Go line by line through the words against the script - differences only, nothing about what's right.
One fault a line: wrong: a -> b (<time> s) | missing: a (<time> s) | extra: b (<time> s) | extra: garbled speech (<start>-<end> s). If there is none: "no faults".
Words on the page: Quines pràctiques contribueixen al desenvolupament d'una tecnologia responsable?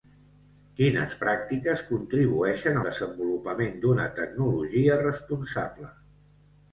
missing: al (2.8 s)